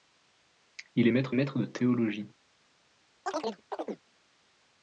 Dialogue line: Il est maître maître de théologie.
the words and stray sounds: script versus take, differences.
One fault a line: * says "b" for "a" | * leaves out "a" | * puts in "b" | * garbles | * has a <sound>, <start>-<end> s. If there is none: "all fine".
* has a chirp, 3.3-4.0 s